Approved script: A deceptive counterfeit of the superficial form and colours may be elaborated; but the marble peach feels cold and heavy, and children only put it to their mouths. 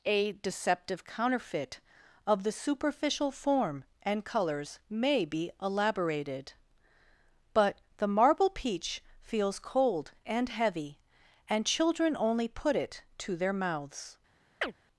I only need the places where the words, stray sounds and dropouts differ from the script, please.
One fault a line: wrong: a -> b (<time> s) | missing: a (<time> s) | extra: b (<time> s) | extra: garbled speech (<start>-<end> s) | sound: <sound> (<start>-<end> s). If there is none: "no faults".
sound: chirp (14.6-14.7 s)